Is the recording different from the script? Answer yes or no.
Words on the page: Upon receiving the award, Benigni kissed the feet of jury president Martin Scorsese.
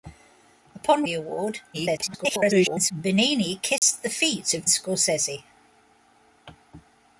yes